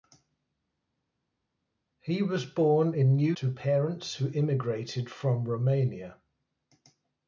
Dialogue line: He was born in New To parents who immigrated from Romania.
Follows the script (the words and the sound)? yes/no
yes